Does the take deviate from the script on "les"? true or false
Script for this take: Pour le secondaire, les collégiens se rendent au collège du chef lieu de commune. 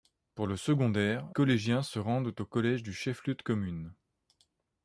true